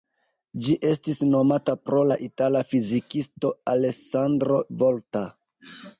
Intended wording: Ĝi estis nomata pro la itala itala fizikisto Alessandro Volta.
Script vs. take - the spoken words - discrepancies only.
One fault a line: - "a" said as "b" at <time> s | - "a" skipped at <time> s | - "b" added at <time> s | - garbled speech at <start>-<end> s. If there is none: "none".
- "itala" skipped at 2.6 s